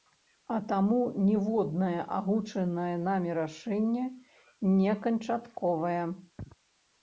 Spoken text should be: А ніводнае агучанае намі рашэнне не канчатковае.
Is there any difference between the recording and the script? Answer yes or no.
yes